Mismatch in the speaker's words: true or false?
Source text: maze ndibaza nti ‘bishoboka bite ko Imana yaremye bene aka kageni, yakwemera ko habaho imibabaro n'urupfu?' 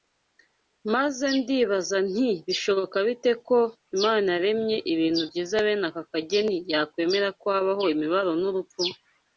true